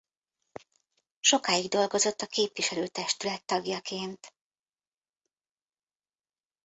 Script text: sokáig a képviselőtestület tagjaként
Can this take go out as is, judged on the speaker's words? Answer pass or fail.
fail